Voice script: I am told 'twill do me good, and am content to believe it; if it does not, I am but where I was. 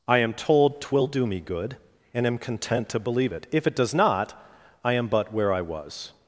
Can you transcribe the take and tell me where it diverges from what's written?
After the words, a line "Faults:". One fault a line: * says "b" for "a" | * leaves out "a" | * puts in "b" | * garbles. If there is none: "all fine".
I am told 'twill do me good, and am content to believe it; if it does not, I am but where I was.
Faults:
all fine